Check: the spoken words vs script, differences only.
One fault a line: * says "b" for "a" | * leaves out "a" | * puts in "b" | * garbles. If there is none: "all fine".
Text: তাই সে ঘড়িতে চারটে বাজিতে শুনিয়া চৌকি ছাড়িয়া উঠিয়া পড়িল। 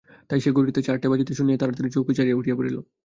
* puts in "তাড়াতাড়ি"